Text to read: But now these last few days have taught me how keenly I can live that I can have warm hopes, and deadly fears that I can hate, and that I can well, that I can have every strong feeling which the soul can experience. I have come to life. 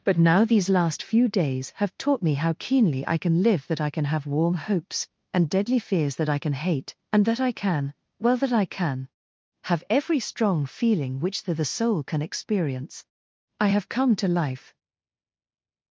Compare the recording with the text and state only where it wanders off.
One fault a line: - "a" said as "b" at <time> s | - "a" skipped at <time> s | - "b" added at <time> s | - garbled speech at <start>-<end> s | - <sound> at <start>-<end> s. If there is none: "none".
- "the" added at 11.5 s